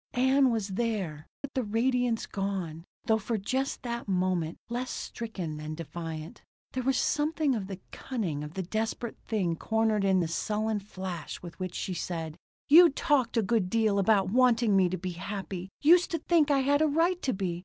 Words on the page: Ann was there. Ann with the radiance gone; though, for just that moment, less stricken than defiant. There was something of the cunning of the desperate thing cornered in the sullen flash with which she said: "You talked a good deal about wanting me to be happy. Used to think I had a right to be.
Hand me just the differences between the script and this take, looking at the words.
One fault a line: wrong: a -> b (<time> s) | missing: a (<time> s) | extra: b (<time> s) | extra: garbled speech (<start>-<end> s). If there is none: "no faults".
missing: Ann (1.3 s)